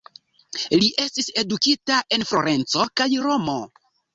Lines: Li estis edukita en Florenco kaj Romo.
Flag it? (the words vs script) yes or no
no